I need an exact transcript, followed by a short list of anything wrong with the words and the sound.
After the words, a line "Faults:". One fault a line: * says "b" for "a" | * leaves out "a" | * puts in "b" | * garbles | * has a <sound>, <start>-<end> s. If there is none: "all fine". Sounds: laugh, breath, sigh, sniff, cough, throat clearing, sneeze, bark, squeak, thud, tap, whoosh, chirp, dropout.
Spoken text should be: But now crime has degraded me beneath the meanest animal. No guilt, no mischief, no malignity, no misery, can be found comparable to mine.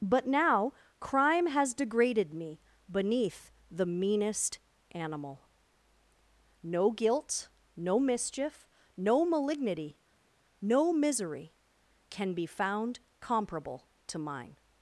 But now crime has degraded me beneath the meanest animal. No guilt, no mischief, no malignity, no misery, can be found comparable to mine.
Faults:
all fine